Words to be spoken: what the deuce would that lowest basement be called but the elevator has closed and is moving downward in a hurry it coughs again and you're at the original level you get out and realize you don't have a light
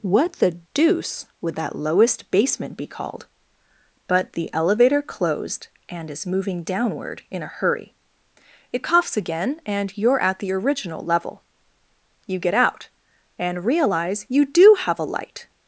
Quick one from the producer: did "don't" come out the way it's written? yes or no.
no